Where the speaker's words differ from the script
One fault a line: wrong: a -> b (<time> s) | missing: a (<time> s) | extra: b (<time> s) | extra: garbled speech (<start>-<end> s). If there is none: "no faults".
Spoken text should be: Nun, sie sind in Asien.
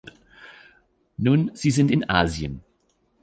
no faults